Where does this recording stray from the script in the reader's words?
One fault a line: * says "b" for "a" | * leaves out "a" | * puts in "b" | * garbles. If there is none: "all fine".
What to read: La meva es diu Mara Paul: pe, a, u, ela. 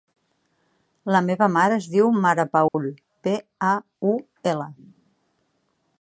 * puts in "mare"